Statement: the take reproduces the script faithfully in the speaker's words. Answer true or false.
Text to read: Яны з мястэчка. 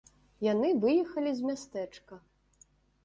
false